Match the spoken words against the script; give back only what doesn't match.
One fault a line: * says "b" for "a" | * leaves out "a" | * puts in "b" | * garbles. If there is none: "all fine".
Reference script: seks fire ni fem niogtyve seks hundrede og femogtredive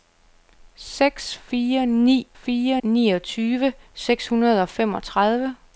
* says "fire" for "fem"